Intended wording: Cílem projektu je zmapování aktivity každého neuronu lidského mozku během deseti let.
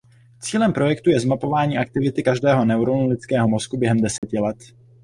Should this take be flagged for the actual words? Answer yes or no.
no